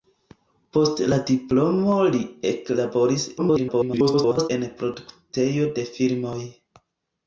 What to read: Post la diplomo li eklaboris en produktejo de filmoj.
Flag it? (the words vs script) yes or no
yes